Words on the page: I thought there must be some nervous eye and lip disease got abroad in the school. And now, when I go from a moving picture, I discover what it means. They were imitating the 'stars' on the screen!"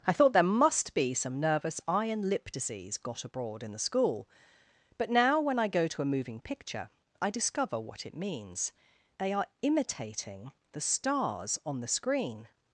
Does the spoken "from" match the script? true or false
false